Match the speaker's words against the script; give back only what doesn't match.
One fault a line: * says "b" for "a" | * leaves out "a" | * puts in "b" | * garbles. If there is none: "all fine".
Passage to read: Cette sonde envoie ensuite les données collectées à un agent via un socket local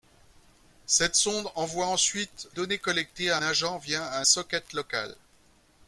* leaves out "les"
* leaves out "un"